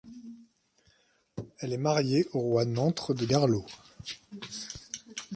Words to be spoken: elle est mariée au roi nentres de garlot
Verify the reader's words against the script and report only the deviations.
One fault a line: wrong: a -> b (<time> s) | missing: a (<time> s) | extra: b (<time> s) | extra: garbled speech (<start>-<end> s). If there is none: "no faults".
no faults